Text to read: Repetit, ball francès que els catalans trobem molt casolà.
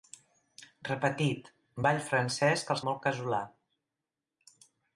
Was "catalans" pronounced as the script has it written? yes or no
no